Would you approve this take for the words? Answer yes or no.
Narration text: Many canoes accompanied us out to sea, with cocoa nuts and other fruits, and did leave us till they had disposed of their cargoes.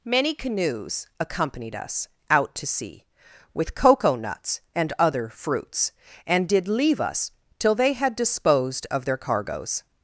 yes